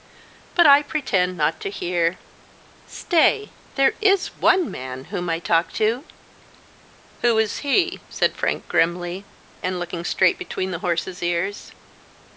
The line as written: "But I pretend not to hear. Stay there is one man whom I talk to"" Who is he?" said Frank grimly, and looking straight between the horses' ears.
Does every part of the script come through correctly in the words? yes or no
yes